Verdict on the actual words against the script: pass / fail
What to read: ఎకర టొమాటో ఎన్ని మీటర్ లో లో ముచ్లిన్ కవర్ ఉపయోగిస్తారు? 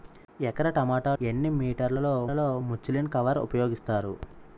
pass